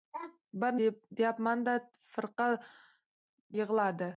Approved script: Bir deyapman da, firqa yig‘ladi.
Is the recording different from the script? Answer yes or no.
no